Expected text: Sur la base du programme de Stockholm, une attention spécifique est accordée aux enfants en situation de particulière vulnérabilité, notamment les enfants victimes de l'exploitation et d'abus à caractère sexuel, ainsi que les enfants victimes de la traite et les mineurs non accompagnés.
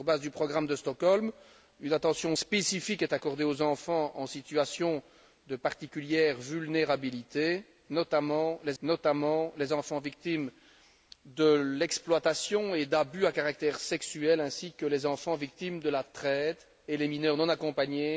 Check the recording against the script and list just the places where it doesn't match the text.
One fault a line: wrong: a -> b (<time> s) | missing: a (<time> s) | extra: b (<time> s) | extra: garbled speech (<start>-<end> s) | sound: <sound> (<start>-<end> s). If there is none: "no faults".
extra: notamment les (8.8 s)